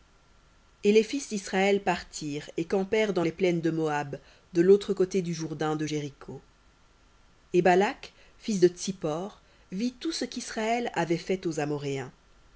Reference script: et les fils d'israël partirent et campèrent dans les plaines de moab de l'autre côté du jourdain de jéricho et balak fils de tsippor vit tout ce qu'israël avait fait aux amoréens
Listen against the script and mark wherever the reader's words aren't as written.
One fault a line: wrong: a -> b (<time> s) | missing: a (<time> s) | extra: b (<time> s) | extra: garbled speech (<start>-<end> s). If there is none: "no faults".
no faults